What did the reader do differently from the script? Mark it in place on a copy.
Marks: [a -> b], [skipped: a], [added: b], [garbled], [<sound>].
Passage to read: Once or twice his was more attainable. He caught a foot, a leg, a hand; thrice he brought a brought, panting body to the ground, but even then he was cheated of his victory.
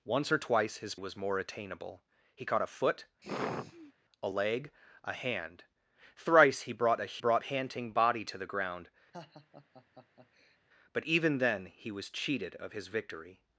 Once or twice his was more attainable. He caught a foot, [sigh] a leg, a hand; thrice he brought a brought, panting body to the ground, [laugh] but even then he was cheated of his victory.